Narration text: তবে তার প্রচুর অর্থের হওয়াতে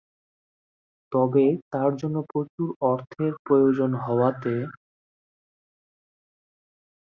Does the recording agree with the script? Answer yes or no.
no